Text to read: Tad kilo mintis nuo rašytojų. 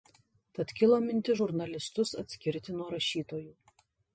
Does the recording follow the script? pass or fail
fail